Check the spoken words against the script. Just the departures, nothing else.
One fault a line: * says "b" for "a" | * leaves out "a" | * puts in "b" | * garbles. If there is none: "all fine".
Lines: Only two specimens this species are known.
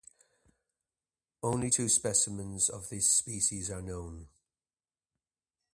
* puts in "of"